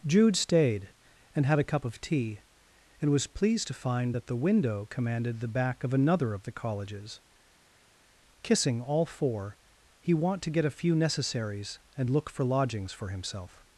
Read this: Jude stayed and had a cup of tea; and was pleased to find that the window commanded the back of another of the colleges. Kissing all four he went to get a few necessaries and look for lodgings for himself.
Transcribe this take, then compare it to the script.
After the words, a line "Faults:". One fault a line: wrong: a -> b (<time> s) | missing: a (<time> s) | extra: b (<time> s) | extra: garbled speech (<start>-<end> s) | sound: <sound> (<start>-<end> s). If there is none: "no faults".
Jude stayed and had a cup of tea; and was pleased to find that the window commanded the back of another of the colleges. Kissing all four he want to get a few necessaries and look for lodgings for himself.
Faults:
wrong: went -> want (10.1 s)